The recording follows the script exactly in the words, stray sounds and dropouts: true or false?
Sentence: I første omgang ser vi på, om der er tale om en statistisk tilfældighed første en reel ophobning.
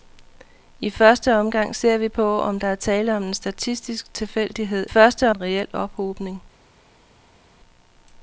true